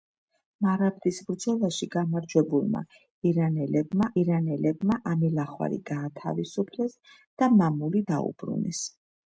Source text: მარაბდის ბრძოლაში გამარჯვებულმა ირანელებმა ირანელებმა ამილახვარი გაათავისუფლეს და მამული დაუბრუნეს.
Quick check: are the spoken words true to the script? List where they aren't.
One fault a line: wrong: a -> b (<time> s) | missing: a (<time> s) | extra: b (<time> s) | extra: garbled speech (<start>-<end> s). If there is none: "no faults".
no faults